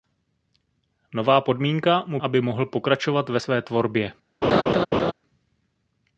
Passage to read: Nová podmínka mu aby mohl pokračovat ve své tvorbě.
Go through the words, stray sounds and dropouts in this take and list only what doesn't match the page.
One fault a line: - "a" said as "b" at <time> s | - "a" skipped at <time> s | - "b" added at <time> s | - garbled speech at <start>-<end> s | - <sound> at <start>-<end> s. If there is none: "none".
- laugh at 4.4-5.1 s